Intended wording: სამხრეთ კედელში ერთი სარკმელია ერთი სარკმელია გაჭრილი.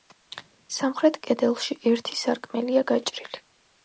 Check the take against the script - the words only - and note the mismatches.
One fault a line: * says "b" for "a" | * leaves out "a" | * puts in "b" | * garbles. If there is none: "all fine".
* leaves out "ერთი სარკმელია"